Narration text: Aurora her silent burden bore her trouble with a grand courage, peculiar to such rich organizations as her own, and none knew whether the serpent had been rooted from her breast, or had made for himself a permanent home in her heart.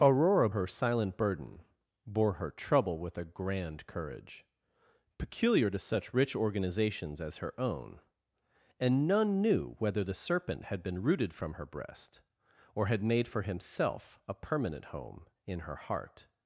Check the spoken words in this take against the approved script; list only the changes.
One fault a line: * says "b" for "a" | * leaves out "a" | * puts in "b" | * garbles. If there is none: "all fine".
all fine